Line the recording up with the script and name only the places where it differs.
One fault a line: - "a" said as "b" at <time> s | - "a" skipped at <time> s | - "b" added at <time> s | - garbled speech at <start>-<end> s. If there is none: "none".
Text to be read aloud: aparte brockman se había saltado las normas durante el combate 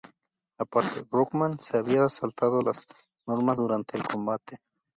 none